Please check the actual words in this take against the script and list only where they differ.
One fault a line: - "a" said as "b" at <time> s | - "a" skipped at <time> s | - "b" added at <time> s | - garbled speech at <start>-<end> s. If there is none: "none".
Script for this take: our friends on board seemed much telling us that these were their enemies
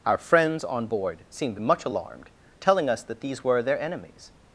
- "alarmed" added at 1.8 s